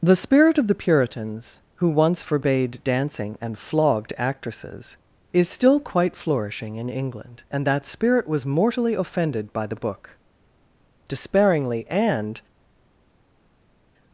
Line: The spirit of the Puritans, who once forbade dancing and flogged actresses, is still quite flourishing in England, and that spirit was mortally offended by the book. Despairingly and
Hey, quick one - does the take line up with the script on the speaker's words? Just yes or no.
yes